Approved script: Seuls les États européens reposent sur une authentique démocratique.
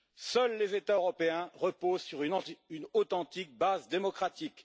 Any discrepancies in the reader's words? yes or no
yes